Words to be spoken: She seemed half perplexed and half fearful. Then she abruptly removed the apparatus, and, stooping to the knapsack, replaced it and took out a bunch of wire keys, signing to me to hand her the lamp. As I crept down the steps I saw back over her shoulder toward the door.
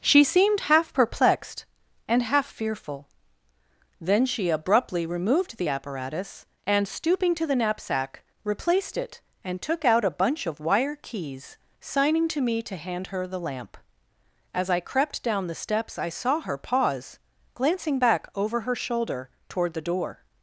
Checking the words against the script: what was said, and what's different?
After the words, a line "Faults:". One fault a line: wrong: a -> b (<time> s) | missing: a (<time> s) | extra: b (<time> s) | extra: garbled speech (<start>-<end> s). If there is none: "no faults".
She seemed half perplexed and half fearful. Then she abruptly removed the apparatus, and, stooping to the knapsack, replaced it and took out a bunch of wire keys, signing to me to hand her the lamp. As I crept down the steps I saw her pause, glancing back over her shoulder toward the door.
Faults:
extra: her pause glancing (16.4 s)